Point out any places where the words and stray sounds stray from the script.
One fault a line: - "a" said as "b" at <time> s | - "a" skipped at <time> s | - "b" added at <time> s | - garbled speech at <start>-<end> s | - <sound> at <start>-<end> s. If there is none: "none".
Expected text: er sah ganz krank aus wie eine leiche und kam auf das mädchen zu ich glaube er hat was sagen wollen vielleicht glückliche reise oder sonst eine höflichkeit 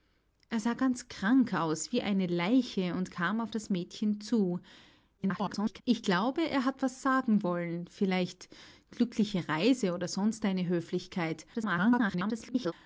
- garbled speech at 5.2-5.8 s
- garbled speech at 11.5-12.7 s